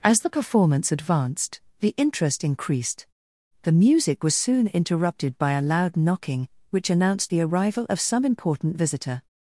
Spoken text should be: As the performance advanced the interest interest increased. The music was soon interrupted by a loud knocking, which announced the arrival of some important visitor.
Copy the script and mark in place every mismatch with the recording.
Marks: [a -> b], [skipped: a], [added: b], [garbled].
As the performance advanced the interest [skipped: interest] increased. The music was soon interrupted by a loud knocking, which announced the arrival of some important visitor.